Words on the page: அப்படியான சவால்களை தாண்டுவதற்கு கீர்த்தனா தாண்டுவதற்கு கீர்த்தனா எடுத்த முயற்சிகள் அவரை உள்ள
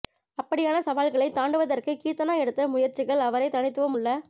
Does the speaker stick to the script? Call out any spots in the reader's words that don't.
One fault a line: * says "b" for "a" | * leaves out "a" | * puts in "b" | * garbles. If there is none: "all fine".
* leaves out "தாண்டுவதற்கு கீர்த்தனா"
* puts in "தனித்துவம்"